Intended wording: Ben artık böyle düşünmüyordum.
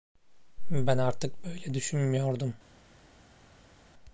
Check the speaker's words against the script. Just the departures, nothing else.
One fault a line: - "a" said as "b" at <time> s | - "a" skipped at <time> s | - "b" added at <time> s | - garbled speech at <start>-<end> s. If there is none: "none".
none